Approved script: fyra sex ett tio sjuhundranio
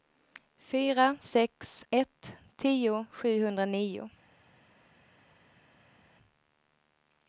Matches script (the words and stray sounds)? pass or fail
pass